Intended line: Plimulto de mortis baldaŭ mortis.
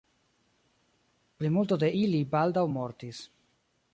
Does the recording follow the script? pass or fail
fail